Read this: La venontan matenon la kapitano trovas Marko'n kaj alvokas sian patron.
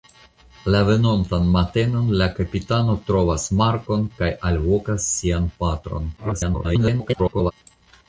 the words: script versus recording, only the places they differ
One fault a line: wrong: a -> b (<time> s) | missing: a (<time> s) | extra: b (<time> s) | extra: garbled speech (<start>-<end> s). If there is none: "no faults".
extra: garbled speech (6.2-7.5 s)